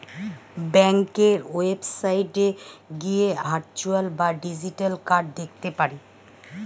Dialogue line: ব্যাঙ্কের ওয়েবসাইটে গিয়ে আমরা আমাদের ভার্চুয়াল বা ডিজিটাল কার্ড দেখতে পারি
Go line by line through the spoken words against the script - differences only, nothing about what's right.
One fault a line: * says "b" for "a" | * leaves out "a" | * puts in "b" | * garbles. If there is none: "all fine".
* leaves out "আমরা আমাদের"